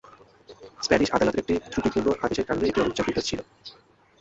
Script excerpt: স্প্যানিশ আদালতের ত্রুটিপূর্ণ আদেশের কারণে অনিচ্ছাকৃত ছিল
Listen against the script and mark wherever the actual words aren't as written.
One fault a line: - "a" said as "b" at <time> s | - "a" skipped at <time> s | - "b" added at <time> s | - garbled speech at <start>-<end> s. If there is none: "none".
- "একটি" added at 1.4 s
- "এটি" added at 2.6 s